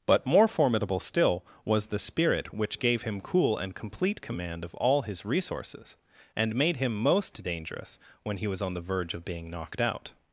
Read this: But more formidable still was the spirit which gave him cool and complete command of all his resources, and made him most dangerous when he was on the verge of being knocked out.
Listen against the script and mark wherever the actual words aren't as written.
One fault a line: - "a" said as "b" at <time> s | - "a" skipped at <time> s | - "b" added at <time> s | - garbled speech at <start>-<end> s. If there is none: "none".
none